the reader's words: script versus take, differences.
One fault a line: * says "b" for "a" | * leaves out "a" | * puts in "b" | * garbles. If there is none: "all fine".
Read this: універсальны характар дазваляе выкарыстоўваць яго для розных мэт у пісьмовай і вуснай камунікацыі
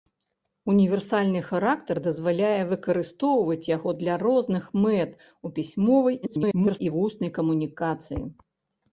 * garbles